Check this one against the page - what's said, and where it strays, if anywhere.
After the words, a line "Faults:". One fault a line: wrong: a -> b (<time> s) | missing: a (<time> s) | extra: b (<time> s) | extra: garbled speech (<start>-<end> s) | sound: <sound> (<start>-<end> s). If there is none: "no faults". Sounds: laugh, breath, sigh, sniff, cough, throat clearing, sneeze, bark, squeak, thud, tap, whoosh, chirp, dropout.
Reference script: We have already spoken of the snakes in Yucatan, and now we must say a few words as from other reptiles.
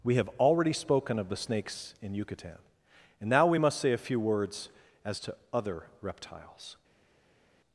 We have already spoken of the snakes in Yucatan, and now we must say a few words as to other reptiles.
Faults:
wrong: from -> to (5.2 s)